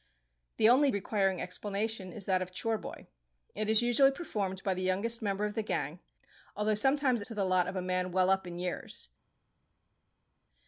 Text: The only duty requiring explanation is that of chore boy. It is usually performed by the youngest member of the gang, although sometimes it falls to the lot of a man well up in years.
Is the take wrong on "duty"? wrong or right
wrong